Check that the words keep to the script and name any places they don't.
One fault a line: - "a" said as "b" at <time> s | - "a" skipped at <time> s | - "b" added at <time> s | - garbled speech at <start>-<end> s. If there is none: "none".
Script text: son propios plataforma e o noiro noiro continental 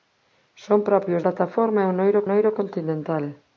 none